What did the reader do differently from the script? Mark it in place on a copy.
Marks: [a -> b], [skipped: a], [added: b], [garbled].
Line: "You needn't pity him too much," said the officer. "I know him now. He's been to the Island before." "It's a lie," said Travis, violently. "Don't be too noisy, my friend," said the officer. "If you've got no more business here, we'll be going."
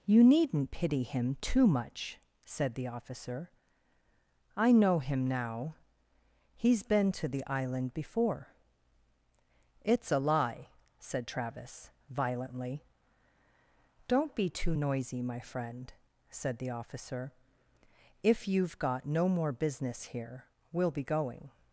"You needn't pity him too much," said the officer. "I know him now. He's been to the Island before." "It's a lie," said Travis, violently. "Don't be too noisy, my friend," said the officer. "If you've got no more business here, we'll be going."